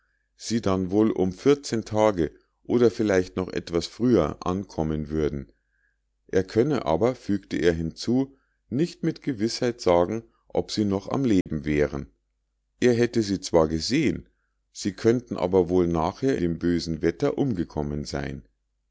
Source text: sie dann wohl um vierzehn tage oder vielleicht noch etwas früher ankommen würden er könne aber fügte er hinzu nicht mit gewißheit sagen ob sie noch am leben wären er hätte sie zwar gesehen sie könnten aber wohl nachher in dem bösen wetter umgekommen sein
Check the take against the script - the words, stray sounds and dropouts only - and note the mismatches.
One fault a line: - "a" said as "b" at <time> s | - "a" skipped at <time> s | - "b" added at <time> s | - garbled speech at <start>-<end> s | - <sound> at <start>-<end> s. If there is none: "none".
- dropout at 11.4-11.5 s
- "in" skipped at 16.4 s